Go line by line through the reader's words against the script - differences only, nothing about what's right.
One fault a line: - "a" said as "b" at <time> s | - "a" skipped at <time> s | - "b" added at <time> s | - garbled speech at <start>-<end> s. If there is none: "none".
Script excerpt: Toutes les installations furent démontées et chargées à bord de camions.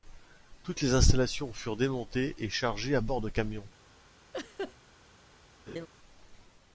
none